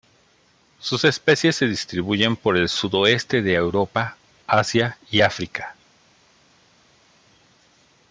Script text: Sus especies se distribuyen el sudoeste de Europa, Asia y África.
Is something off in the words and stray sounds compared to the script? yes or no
yes